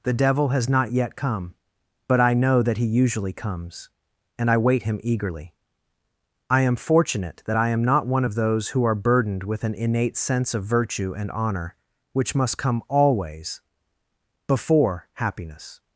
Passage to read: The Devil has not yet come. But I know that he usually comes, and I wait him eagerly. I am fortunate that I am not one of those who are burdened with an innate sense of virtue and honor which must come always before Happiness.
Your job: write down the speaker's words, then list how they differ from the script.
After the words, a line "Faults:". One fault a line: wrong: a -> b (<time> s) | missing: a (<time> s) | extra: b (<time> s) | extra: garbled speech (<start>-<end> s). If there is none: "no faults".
The Devil has not yet come. But I know that he usually comes, and I wait him eagerly. I am fortunate that I am not one of those who are burdened with an innate sense of virtue and honor which must come always before Happiness.
Faults:
no faults